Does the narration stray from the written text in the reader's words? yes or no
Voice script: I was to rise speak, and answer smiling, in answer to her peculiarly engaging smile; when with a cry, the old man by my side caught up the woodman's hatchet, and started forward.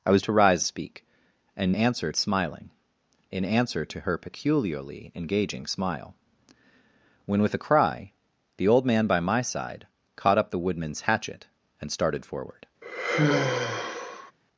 no